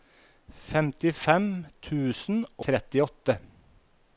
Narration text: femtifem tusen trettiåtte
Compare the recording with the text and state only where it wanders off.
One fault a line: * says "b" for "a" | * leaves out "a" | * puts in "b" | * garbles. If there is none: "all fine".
all fine